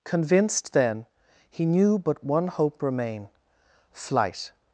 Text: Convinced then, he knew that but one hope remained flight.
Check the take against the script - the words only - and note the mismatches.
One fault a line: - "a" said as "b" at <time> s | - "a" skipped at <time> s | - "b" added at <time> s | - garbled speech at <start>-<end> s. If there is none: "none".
- "that" skipped at 2.0 s
- "remained" said as "remain" at 2.8 s